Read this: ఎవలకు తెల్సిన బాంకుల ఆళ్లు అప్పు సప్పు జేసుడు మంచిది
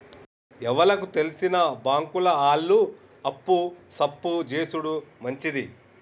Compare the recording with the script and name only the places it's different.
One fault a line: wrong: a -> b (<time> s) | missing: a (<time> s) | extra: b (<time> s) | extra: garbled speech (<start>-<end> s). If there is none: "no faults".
no faults